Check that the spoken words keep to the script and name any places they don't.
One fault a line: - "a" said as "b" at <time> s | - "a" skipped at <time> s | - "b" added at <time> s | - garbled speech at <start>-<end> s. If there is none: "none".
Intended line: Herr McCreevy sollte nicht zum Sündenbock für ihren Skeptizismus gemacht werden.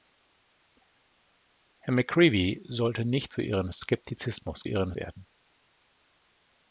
- "zum Sündenbock" skipped at 3.3 s
- "gemacht" said as "ihren" at 4.7 s